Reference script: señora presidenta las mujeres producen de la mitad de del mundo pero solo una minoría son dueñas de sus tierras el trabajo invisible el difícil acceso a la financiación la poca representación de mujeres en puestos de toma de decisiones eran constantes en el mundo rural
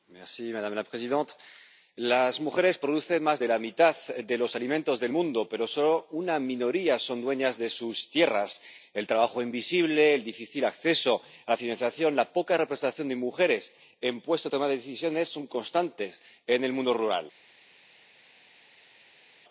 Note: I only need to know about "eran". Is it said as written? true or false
false